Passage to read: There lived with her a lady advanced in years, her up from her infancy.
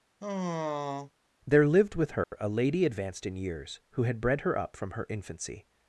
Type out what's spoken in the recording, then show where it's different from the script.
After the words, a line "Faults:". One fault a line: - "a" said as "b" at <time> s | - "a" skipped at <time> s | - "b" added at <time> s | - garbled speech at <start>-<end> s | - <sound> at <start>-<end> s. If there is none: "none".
There lived with her a lady advanced in years, who had bred her up from her infancy.
Faults:
- sigh at 0.2-1.1 s
- dropout at 2.2-2.3 s
- "who had bred" added at 3.9 s